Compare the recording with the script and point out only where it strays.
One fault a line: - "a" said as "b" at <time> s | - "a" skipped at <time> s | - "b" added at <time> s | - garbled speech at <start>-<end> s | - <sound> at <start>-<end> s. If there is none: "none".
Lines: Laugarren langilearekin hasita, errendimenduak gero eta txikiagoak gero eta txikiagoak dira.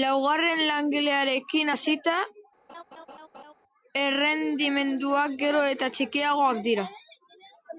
- laugh at 2.7-3.5 s
- "gero eta txikiagoak" skipped at 6.6 s